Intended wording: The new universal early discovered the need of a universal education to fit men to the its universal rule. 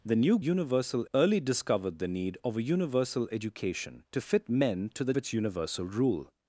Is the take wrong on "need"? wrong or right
right